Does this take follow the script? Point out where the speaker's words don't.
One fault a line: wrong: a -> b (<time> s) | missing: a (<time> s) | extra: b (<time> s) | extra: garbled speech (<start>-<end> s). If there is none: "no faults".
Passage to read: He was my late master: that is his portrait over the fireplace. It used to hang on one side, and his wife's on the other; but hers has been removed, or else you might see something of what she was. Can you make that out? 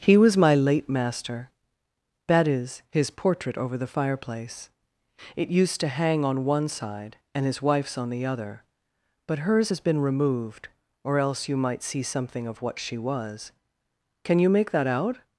no faults